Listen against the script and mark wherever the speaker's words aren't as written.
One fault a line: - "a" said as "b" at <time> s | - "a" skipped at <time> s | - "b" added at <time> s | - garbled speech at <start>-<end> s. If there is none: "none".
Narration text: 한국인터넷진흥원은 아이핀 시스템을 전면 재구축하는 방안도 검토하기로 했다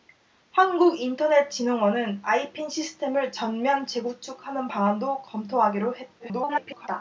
- garbled speech at 6.2-6.9 s